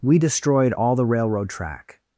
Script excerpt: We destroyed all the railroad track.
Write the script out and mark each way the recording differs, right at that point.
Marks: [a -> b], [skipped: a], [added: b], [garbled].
We destroyed all the railroad track.